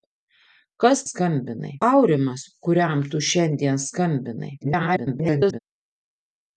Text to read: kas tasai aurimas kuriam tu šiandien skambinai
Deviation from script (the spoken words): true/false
true